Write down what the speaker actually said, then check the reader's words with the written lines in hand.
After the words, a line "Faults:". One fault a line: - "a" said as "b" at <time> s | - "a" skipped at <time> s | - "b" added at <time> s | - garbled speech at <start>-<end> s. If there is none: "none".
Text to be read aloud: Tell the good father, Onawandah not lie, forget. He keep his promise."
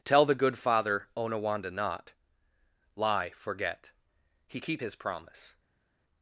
Tell the good father, Onawandah not lie, forget. He keep his promise."
Faults:
none